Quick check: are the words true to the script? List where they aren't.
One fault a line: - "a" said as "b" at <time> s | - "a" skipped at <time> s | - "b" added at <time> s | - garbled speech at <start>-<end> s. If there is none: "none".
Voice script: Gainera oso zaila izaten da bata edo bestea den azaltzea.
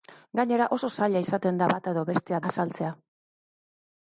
- "den" skipped at 2.4 s